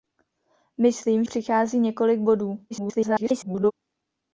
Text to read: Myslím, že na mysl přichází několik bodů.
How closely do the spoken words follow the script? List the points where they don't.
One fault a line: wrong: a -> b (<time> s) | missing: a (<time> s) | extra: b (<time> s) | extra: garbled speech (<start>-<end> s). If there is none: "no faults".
missing: že na mysl (1.2 s)
extra: garbled speech (2.7-3.7 s)